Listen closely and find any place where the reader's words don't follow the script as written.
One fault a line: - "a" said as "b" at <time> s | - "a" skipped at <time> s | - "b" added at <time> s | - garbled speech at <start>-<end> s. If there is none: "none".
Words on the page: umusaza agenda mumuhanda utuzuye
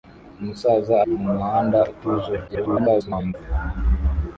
- "agenda" skipped at 0.9 s
- garbled speech at 2.5-3.3 s